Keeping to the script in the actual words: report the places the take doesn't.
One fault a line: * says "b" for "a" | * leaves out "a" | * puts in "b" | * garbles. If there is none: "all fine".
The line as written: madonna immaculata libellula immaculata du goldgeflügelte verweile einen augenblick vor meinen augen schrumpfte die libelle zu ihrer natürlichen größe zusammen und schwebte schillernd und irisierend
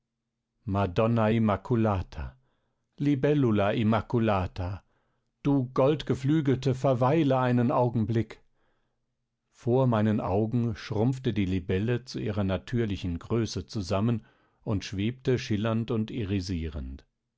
all fine